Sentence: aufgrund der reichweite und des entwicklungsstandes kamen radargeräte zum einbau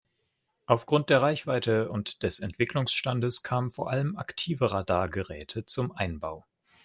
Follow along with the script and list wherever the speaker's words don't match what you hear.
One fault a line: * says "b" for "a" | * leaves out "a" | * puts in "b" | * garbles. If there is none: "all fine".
* puts in "vor allem aktive"